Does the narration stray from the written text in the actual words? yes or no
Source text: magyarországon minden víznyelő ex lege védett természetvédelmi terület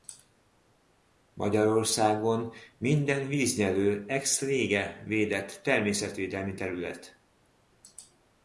no